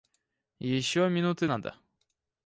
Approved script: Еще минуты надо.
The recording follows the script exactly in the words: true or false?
true